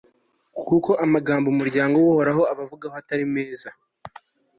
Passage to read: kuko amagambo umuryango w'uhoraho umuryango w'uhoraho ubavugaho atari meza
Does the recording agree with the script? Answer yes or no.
no